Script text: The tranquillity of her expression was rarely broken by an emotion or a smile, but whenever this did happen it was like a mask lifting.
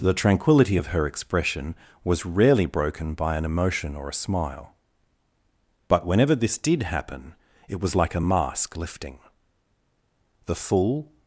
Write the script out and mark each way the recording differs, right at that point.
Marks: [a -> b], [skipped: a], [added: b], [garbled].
The tranquillity of her expression was rarely broken by an emotion or a smile, but whenever this did happen it was like a mask lifting. [added: The full]